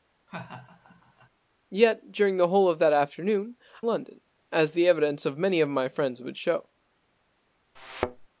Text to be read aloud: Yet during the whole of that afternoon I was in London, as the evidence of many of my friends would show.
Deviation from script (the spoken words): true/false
true